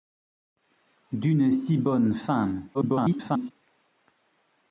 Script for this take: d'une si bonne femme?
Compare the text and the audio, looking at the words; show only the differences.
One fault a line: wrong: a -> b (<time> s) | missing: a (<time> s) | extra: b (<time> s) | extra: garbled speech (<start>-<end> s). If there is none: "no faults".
extra: garbled speech (2.7-3.5 s)